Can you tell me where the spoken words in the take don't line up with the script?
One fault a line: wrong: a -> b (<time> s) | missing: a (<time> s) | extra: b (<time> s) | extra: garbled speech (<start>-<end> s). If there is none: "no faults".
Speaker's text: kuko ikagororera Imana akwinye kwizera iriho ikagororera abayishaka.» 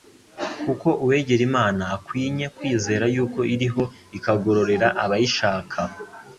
wrong: ikagororera -> uwegera (1.0 s)
extra: yuko (3.1 s)